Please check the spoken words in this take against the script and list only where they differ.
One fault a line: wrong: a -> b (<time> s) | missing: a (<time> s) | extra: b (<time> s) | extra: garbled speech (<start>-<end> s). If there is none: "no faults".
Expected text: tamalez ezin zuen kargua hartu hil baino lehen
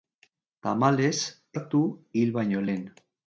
missing: ezin zuen kargua (1.2 s)